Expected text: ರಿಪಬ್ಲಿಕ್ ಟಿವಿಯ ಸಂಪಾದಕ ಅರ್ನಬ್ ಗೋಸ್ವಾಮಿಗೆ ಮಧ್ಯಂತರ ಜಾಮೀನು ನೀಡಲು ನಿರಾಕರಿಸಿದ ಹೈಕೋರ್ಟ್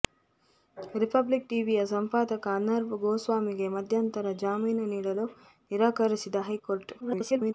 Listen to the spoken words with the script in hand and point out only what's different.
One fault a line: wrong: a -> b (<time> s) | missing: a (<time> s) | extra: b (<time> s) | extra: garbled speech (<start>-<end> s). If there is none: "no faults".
extra: garbled speech (7.0-7.5 s)